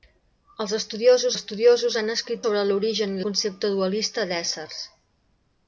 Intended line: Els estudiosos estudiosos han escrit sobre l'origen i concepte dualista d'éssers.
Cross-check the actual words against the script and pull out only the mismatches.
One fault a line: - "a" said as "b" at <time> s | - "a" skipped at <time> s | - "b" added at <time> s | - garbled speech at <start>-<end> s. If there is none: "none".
none